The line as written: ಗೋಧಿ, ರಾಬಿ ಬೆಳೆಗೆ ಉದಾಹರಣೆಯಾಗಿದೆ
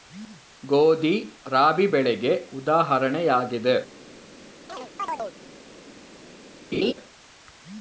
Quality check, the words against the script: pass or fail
pass